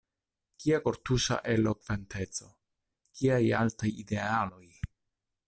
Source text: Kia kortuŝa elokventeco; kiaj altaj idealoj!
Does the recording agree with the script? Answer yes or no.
yes